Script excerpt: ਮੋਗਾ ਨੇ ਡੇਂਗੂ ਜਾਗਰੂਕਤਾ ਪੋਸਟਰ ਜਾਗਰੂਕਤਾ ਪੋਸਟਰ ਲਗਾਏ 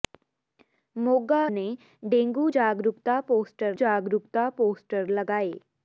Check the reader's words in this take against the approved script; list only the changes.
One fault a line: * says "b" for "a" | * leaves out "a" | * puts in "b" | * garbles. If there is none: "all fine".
all fine